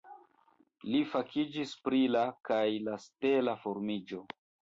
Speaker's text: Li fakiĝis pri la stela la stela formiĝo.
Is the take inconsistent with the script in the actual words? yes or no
yes